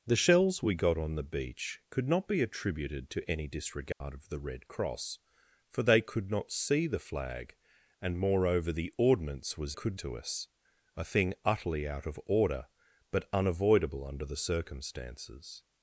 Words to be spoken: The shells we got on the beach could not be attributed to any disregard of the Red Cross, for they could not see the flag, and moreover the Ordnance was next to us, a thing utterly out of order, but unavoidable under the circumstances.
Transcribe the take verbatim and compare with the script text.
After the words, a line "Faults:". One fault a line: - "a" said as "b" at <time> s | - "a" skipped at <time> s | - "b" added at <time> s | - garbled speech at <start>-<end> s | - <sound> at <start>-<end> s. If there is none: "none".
The shells we got on the beach could not be attributed to any disregard of the Red Cross, for they could not see the flag, and moreover the Ordnance was could to us, a thing utterly out of order, but unavoidable under the circumstances.
Faults:
- dropout at 3.9-4.0 s
- "next" said as "could" at 9.7 s